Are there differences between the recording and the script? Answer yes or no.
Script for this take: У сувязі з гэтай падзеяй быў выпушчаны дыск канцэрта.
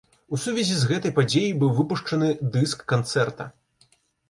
no